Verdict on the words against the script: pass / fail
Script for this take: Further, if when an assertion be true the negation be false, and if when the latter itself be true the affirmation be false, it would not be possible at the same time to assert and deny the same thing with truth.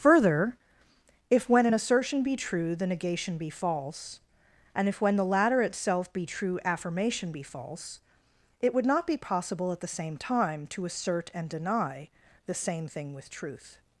fail